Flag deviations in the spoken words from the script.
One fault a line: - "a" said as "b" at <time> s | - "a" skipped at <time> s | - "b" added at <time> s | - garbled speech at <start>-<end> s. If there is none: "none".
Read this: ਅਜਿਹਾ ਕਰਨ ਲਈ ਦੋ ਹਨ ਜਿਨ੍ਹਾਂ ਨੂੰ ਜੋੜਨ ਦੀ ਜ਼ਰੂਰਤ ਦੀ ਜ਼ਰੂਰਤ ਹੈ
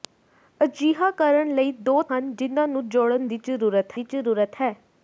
none